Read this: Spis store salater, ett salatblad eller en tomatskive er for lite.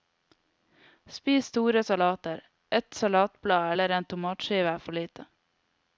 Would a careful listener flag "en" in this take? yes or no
no